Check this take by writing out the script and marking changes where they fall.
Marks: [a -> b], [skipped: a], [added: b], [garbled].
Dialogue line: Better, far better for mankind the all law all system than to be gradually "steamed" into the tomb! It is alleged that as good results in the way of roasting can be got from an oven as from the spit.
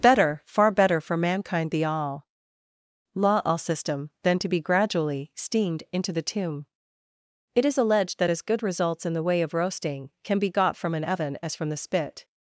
Better, far better for mankind the all law all system than to be gradually "steamed" into the tomb! It is alleged that as good results in the way of roasting can be got from an oven as from the spit.